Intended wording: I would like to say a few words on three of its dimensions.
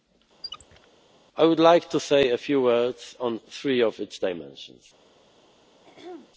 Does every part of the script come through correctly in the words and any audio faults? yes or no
no